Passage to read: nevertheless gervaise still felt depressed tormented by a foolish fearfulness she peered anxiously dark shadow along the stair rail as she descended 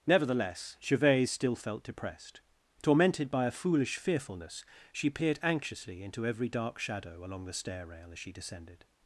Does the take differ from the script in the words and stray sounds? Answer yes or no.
yes